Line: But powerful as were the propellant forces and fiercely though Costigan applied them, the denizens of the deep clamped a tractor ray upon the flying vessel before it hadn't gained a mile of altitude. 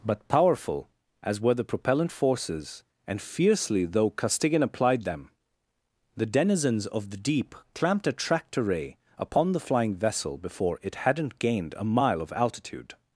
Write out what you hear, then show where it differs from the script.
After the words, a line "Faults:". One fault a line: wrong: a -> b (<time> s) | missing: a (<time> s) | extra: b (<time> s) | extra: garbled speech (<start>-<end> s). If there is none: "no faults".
But powerful as were the propellant forces and fiercely though Costigan applied them, the denizens of the deep clamped a tractor ray upon the flying vessel before it hadn't gained a mile of altitude.
Faults:
no faults